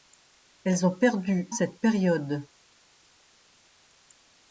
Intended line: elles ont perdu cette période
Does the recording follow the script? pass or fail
pass